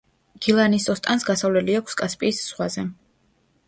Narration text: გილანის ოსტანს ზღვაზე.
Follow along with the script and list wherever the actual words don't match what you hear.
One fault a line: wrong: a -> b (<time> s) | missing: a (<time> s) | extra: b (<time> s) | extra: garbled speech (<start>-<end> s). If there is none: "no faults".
extra: გასასვლელი აქვს კასპიის (1.3 s)